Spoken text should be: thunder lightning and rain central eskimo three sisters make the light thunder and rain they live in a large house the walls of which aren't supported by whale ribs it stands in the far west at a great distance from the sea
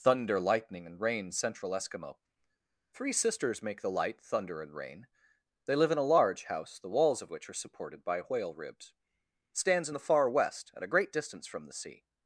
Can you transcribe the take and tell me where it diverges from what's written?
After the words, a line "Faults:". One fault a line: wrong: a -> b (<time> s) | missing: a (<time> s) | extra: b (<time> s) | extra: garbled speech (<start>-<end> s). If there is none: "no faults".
thunder lightning and rain central eskimo three sisters make the light thunder and rain they live in a large house the walls of which are supported by whale ribs it stands in the far west at a great distance from the sea
Faults:
wrong: aren't -> are (7.5 s)